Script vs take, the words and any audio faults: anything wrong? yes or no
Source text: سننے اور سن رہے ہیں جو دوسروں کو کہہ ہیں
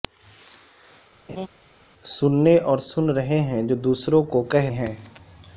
yes